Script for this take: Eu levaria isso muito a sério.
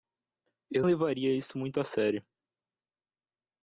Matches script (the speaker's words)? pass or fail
pass